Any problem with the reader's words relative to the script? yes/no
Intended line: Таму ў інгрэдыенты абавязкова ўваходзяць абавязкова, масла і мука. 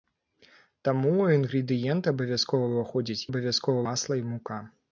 no